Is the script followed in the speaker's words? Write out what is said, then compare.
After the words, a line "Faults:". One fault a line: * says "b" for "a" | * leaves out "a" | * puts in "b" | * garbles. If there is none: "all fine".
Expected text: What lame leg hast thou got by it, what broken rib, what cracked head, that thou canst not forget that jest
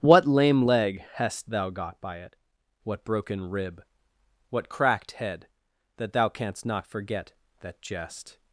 What lame leg hast thou got by it, what broken rib, what cracked head, that thou canst not forget that jest
Faults:
all fine